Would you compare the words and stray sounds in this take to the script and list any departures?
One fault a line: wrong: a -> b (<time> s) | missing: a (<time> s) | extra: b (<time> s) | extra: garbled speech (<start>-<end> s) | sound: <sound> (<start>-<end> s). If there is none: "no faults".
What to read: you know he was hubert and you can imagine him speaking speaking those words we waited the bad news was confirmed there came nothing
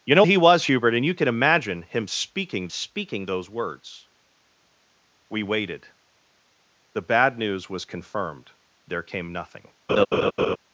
sound: laugh (9.9-10.6 s)